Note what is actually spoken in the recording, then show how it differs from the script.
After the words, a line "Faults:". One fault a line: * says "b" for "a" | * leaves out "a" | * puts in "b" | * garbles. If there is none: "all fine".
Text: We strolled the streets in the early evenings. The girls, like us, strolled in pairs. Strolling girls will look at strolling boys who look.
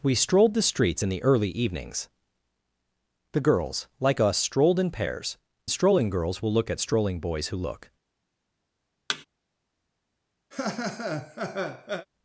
We strolled the streets in the early evenings. The girls, like us, strolled in pairs. Strolling girls will look at strolling boys who look.
Faults:
all fine